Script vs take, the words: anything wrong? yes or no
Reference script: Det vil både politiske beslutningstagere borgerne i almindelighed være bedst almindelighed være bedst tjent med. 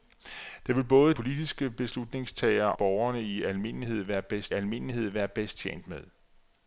no